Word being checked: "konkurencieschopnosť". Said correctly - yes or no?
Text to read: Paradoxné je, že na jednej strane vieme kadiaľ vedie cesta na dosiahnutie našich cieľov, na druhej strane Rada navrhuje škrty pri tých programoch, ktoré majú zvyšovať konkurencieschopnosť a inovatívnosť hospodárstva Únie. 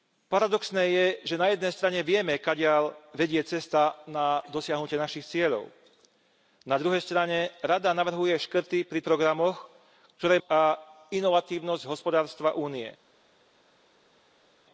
no